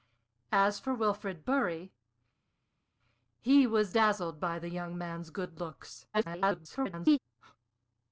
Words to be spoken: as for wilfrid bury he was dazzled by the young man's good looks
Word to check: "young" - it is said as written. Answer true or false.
true